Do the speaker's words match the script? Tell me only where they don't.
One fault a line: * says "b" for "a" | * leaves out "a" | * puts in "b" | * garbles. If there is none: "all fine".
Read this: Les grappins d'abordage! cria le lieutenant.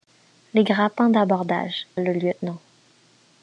* leaves out "cria"